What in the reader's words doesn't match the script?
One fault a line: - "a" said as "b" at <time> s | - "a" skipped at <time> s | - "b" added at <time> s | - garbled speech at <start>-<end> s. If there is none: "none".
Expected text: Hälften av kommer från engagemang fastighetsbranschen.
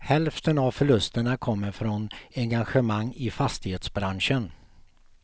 - "förlusterna" added at 0.7 s
- "i" added at 3.1 s